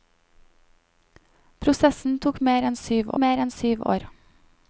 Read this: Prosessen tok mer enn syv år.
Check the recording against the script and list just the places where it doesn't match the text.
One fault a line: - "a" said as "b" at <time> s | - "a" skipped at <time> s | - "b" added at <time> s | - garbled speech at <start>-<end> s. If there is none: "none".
- "mer enn syv" added at 3.2 s